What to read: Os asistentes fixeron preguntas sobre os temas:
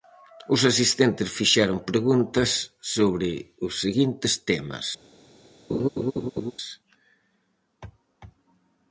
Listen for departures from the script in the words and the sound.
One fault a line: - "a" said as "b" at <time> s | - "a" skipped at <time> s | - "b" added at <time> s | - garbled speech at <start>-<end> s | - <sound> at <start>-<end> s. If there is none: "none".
- "seguintes" added at 3.8 s
- laugh at 5.7-6.5 s